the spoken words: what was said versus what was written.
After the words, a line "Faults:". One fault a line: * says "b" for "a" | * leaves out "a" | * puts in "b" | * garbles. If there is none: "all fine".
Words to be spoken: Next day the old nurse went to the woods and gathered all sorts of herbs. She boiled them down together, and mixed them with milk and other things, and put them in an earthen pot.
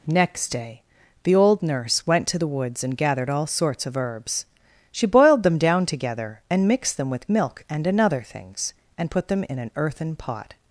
Next day the old nurse went to the woods and gathered all sorts of herbs. She boiled them down together, and mixed them with milk and another things, and put them in an earthen pot.
Faults:
* says "another" for "other"